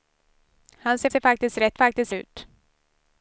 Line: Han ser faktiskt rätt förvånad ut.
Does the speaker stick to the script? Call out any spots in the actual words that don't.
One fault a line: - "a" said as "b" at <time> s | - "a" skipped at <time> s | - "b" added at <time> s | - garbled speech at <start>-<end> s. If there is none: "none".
- "ser" added at 1.1 s
- "förvånad" said as "faktiskt" at 1.7 s